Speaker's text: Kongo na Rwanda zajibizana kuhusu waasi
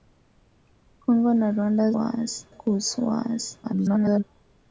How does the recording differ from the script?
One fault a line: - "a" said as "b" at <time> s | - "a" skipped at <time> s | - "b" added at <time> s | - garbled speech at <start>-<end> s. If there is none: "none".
- "zajibizana" said as "waasi" at 1.9 s
- garbled speech at 3.6-4.2 s